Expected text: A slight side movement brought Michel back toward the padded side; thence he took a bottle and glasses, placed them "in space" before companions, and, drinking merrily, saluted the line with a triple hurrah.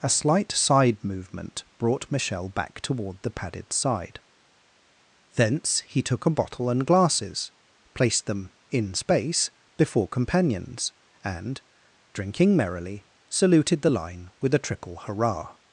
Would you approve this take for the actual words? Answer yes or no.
yes